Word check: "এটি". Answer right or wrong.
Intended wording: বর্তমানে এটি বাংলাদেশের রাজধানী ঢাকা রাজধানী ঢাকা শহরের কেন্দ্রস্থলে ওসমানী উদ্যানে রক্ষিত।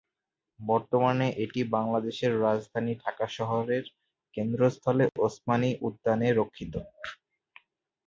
right